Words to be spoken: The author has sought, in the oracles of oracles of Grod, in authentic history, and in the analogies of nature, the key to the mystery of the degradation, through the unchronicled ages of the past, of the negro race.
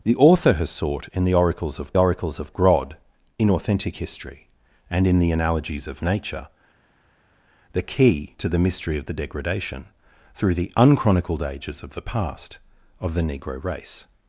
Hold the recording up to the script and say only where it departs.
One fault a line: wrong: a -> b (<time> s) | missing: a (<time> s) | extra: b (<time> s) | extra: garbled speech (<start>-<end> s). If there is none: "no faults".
no faults